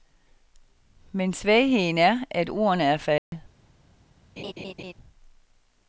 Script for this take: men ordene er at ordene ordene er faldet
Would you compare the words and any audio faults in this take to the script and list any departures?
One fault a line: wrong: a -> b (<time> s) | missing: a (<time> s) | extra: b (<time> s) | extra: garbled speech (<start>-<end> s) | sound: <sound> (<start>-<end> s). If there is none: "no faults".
wrong: ordene -> svagheden (1.3 s)
missing: ordene (2.8 s)
sound: dropout (3.2-3.3 s)
sound: laugh (4.4-4.9 s)